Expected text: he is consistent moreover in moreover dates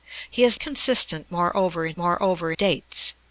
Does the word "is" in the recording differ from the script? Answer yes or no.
no